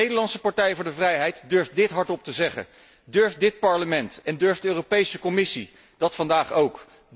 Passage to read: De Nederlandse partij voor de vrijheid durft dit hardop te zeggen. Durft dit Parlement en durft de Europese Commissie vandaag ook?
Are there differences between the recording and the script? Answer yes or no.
yes